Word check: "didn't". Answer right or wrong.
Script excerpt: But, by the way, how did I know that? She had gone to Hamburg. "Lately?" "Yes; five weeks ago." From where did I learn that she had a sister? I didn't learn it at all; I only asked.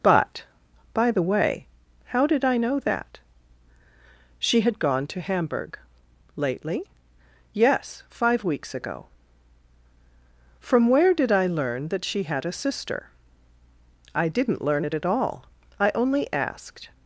right